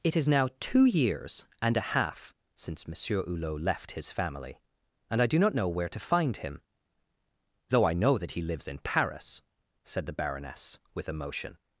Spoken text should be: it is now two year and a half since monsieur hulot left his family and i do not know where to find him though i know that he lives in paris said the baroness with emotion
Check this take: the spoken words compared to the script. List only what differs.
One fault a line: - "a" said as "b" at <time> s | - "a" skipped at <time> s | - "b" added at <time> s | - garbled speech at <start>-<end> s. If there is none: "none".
- "year" said as "years" at 0.8 s